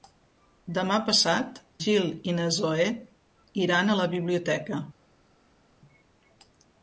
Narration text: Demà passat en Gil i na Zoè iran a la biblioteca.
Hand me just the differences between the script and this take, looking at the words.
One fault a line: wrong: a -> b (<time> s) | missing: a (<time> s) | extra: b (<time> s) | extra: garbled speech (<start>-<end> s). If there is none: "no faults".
missing: en (1.6 s)